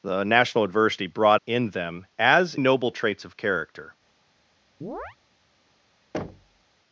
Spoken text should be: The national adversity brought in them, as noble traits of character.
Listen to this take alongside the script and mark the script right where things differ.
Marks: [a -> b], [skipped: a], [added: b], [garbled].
The national adversity brought in them, as noble traits of character.